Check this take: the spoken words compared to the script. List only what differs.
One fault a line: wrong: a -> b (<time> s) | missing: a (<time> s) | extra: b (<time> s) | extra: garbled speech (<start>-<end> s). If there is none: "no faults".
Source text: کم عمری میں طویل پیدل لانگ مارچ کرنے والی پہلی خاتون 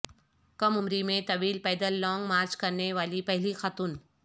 no faults